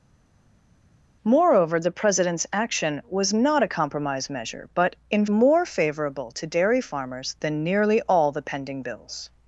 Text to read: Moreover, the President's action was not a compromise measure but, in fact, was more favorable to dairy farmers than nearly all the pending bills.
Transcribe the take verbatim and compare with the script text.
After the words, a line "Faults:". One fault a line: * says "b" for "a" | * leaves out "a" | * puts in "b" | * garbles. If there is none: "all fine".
Moreover, the President's action was not a compromise measure but, in more favorable to dairy farmers than nearly all the pending bills.
Faults:
* leaves out "fact was"